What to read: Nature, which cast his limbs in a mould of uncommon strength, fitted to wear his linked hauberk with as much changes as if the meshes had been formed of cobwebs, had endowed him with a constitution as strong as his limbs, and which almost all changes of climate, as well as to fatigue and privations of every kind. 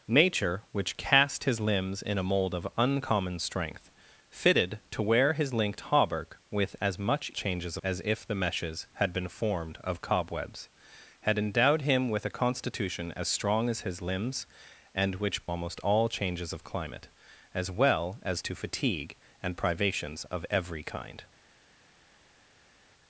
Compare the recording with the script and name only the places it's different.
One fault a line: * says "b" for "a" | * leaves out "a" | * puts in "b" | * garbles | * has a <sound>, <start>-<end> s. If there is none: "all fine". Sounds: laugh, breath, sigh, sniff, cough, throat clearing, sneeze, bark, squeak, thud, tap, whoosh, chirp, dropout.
all fine